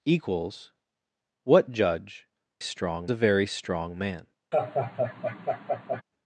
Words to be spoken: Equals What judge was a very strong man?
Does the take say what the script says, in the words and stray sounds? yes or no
no